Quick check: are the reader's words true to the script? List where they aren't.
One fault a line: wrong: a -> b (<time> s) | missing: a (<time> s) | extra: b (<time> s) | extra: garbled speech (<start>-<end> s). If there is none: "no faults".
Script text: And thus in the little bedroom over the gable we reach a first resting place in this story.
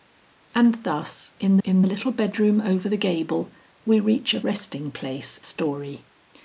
extra: in (1.6 s)
missing: first (4.4 s)
missing: in this (5.4 s)